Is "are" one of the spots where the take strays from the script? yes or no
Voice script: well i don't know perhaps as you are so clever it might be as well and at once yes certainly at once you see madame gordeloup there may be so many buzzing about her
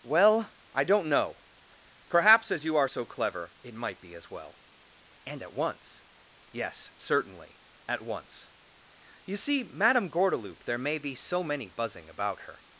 no